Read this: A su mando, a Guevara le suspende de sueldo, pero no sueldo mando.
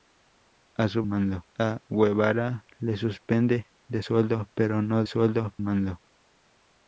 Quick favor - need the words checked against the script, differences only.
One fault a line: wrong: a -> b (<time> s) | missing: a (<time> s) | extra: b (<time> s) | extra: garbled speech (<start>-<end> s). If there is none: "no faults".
no faults